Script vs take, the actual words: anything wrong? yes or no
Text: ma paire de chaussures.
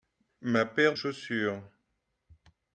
yes